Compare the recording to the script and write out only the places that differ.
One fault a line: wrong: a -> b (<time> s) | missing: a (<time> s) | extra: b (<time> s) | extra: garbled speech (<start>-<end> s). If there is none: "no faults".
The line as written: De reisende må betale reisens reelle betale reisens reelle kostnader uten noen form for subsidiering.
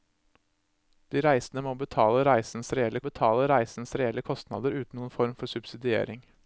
no faults